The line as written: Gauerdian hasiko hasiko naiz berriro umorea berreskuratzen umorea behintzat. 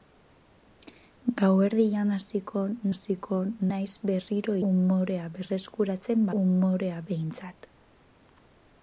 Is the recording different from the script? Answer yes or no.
no